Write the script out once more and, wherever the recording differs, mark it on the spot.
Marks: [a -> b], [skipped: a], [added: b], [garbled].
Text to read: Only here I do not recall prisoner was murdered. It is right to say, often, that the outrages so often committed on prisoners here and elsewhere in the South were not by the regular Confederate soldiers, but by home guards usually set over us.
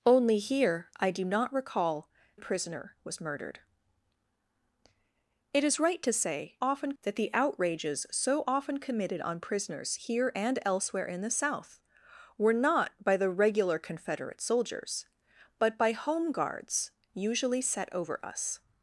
Only here I do not recall prisoner was murdered. It is right to say, often, that the outrages so often committed on prisoners here and elsewhere in the South were not by the regular Confederate soldiers, but by home guards usually set over us.